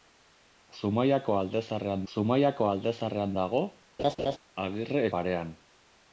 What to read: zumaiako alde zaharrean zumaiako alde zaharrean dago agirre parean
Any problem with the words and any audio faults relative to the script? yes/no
yes